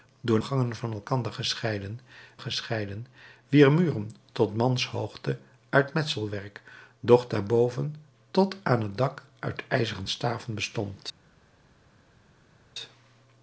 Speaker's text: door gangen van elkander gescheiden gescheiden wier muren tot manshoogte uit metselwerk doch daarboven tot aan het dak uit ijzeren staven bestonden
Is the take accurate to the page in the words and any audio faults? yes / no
yes